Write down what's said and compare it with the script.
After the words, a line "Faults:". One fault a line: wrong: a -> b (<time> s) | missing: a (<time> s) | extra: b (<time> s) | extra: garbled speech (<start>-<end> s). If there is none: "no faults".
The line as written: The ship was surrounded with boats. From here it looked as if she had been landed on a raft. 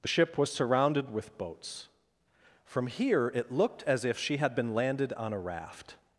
The ship was surrounded with boats. From here it looked as if she had been landed on a raft.
Faults:
no faults